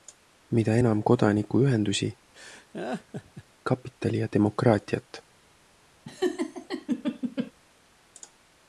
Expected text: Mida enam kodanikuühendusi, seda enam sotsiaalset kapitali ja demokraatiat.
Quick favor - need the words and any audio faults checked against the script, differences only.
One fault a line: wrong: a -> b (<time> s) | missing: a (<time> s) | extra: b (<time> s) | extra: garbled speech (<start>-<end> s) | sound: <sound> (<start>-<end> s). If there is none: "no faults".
missing: seda enam sotsiaalset (2.1 s)
sound: laugh (2.3-3.4 s)
sound: laugh (6.0-7.5 s)